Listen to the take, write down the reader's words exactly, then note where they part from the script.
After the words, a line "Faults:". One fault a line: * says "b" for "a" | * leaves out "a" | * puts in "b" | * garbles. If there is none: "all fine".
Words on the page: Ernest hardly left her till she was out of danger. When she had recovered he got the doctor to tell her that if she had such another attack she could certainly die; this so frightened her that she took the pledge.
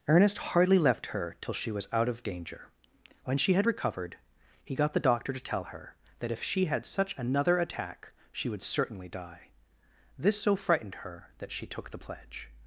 Ernest hardly left her till she was out of danger. When she had recovered he got the doctor to tell her that if she had such another attack she would certainly die; this so frightened her that she took the pledge.
Faults:
* says "would" for "could"